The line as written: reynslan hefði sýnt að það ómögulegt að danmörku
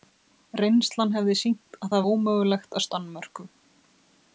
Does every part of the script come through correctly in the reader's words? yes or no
yes